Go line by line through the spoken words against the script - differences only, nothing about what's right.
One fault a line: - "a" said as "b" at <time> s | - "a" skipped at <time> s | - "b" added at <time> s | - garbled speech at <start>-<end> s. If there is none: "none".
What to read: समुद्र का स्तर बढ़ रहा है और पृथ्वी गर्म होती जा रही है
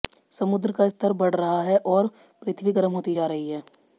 none